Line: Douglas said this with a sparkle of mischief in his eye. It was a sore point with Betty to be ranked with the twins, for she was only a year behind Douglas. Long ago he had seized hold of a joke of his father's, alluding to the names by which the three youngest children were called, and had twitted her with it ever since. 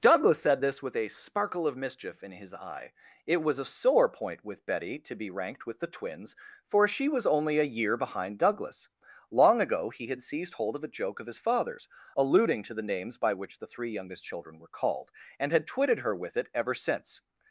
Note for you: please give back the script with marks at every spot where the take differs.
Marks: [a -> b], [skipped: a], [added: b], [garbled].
Douglas said this with a sparkle of mischief in his eye. It was a sore point with Betty to be ranked with the twins, for she was only a year behind Douglas. Long ago he had seized hold of a joke of his father's, alluding to the names by which the three youngest children were called, and had twitted her with it ever since.